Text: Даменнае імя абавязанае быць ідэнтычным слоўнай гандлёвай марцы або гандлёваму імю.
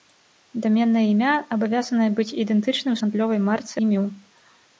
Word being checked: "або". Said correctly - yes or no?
no